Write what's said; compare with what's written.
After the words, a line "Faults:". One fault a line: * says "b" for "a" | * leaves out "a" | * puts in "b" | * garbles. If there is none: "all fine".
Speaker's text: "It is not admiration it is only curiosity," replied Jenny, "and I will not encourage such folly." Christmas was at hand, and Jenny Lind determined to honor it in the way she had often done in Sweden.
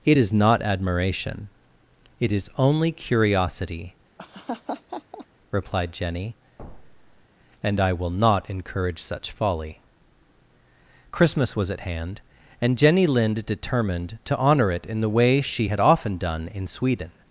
"It is not admiration it is only curiosity," replied Jenny, "and I will not encourage such folly." Christmas was at hand, and Jenny Lind determined to honor it in the way she had often done in Sweden.
Faults:
all fine